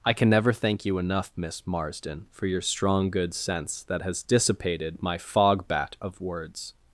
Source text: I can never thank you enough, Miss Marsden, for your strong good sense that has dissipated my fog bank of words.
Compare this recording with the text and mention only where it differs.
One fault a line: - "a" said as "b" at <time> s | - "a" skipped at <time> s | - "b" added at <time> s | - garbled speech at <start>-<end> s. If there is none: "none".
- "bank" said as "bat" at 5.7 s